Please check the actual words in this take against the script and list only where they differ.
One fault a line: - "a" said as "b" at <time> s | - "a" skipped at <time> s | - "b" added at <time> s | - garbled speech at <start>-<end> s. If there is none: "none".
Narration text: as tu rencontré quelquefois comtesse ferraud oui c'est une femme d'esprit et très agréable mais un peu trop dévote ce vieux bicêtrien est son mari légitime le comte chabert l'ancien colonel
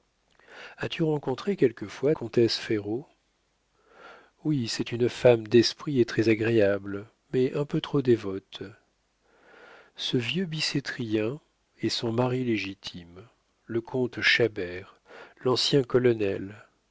none